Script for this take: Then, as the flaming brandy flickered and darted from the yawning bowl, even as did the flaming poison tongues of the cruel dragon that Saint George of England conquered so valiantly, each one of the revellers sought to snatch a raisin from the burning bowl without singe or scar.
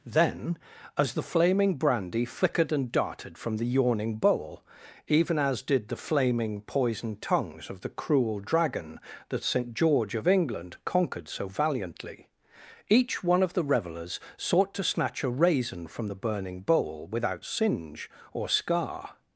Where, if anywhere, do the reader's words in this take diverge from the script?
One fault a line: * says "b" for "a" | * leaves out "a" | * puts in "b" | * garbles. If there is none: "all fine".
all fine